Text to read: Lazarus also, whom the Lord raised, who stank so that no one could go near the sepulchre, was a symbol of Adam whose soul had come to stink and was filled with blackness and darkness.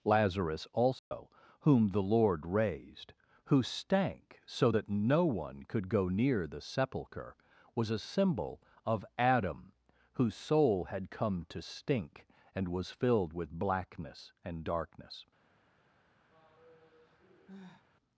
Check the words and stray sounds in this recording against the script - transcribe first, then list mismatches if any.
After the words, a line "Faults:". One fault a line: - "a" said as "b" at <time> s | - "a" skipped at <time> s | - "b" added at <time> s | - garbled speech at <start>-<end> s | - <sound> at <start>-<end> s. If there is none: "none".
Lazarus also, whom the Lord raised, who stank so that no one could go near the sepulchre, was a symbol of Adam whose soul had come to stink and was filled with blackness and darkness.
Faults:
- dropout at 1.0-1.1 s
- sigh at 16.3-17.8 s